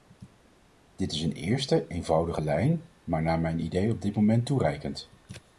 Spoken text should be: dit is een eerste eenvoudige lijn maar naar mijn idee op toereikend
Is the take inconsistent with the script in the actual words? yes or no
yes